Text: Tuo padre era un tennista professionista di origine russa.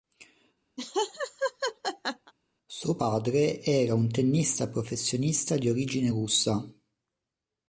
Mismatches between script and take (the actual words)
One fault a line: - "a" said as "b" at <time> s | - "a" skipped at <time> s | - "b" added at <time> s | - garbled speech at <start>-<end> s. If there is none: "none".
- "Tuo" said as "Suo" at 2.7 s